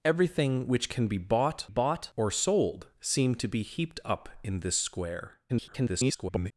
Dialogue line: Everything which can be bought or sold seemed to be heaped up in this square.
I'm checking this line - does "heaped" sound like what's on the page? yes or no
yes